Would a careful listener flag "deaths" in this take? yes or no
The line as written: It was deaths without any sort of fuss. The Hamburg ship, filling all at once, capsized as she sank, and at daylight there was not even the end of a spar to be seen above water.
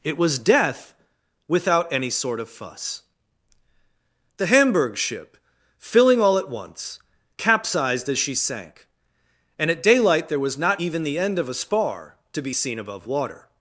yes